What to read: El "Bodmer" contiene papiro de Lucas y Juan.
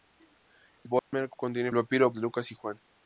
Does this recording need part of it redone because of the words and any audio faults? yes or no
yes